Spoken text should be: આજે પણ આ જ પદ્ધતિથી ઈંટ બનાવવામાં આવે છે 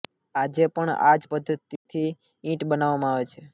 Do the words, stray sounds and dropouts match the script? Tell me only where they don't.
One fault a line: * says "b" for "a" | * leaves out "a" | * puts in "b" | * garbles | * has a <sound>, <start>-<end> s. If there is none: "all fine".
* has a dropout, 1.8-1.9 s